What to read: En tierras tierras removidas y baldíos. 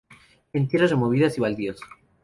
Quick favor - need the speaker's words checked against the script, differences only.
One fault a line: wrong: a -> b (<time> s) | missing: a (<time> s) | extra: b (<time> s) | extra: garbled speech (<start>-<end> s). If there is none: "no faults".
missing: tierras (0.9 s)